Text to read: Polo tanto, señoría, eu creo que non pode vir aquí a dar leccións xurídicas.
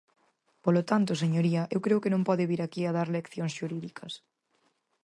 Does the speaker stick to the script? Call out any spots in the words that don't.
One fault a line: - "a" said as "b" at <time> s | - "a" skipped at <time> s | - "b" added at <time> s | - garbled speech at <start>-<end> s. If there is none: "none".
none